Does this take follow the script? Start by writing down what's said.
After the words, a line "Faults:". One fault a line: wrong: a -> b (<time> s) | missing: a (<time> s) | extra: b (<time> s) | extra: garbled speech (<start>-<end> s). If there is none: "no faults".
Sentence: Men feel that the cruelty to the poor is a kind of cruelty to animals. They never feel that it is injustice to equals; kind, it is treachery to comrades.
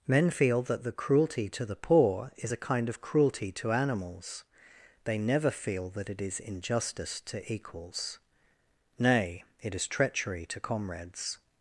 Men feel that the cruelty to the poor is a kind of cruelty to animals. They never feel that it is injustice to equals; nay, it is treachery to comrades.
Faults:
wrong: kind -> nay (9.0 s)